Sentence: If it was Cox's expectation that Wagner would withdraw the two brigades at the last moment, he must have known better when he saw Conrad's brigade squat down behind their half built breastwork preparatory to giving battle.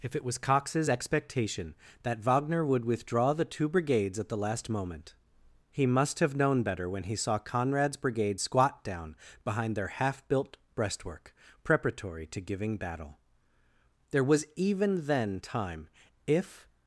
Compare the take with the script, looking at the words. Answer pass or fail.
fail